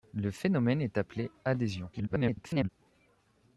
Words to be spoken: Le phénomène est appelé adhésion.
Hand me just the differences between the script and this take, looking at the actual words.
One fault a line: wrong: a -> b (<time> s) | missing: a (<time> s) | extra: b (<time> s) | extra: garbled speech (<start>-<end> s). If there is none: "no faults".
extra: garbled speech (1.9-2.7 s)